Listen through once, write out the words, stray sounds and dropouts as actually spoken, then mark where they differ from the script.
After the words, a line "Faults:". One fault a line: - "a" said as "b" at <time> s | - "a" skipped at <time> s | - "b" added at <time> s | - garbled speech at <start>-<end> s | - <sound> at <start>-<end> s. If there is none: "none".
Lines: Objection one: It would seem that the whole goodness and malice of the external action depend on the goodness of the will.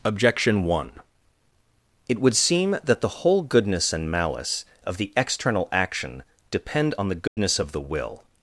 Objection one: It would seem that the whole goodness and malice of the external action depend on the goodness of the will.
Faults:
- dropout at 7.3-7.4 s